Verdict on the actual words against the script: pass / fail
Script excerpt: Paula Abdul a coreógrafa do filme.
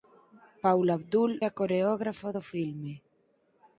pass